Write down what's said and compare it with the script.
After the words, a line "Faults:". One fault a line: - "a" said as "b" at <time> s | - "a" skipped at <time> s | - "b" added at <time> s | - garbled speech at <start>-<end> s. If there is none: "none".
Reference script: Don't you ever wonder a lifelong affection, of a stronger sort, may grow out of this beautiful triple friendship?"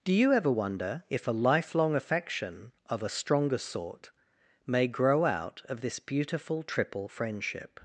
Do you ever wonder if a lifelong affection, of a stronger sort, may grow out of this beautiful triple friendship?"
Faults:
- "Don't" said as "Do" at 0.0 s
- "if" added at 1.1 s